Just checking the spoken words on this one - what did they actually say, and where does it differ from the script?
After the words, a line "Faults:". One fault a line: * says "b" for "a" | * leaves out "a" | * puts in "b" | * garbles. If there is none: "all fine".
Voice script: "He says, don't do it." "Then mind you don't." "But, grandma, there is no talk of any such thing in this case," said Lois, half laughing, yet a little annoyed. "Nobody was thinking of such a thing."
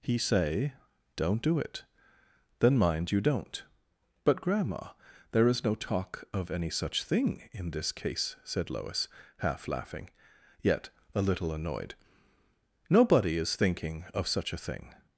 "He say, don't do it." "Then mind you don't." "But, grandma, there is no talk of any such thing in this case," said Lois, half laughing, yet a little annoyed. "Nobody is thinking of such a thing."
Faults:
* says "say" for "says"
* says "is" for "was"